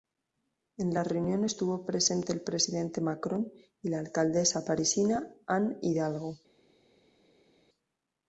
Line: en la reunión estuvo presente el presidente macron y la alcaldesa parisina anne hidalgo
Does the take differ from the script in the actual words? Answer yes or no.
no